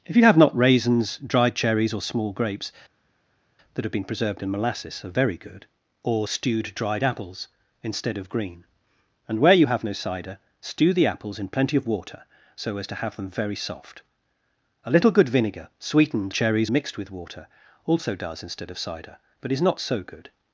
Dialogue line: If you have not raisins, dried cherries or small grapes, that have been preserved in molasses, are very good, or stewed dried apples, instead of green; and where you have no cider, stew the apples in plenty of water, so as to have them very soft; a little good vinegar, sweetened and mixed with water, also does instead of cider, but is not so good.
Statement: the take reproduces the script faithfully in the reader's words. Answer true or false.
false